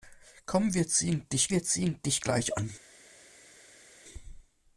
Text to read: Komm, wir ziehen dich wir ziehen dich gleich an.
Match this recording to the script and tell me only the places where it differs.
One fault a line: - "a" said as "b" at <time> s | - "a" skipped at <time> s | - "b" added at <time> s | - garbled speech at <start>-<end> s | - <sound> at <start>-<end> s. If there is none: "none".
none